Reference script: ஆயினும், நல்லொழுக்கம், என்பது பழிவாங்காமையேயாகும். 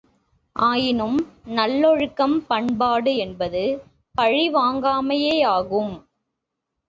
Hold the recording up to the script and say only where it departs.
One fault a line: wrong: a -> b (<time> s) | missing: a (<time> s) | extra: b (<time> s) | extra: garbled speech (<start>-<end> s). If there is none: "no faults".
extra: பண்பாடு (2.5 s)